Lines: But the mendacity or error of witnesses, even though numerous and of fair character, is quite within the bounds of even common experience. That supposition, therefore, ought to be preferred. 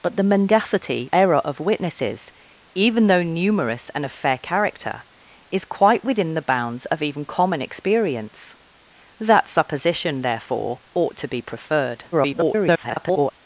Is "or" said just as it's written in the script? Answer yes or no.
no